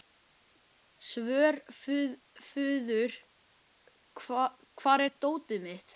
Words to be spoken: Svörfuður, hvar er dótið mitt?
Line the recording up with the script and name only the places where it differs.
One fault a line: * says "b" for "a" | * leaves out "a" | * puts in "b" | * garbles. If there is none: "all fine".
all fine